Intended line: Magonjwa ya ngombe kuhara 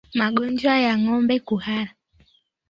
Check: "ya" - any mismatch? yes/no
no